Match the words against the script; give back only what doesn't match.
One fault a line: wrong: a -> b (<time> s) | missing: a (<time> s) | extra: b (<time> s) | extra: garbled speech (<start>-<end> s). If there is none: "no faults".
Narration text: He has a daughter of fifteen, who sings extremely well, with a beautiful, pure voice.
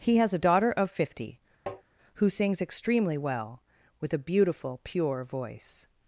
wrong: fifteen -> fifty (0.9 s)